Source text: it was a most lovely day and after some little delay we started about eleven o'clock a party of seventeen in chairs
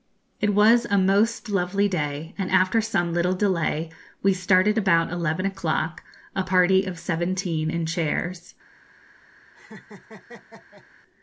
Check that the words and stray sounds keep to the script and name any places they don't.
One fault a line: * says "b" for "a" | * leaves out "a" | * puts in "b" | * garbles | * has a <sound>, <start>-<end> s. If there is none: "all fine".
* has a laugh, 9.5-10.9 s